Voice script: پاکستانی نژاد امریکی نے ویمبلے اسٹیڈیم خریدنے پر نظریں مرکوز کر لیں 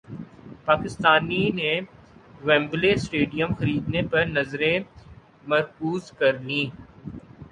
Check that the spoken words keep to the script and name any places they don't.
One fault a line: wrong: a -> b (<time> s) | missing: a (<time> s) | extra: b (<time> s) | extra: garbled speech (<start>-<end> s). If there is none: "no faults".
missing: نژاد امریکی (1.4 s)